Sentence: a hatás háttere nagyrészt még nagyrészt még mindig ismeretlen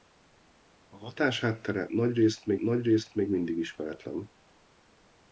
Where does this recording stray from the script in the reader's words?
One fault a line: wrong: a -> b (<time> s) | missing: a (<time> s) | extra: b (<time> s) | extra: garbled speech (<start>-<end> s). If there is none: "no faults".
no faults